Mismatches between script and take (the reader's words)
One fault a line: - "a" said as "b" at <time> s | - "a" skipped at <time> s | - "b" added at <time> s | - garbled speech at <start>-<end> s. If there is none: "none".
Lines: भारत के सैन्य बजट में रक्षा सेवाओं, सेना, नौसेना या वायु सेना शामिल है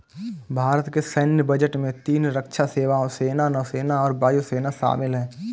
- "तीन" added at 2.0 s
- "या" said as "और" at 4.0 s